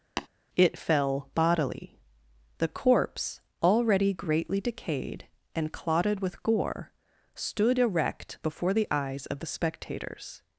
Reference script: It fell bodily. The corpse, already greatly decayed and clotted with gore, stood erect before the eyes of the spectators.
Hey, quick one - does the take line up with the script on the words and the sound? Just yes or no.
no